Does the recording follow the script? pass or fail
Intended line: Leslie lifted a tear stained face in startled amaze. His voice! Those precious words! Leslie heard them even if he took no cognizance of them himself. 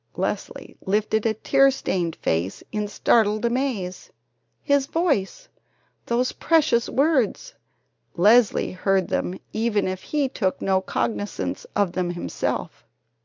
pass